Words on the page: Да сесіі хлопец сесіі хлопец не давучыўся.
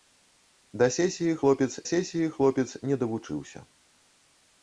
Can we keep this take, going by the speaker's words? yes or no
yes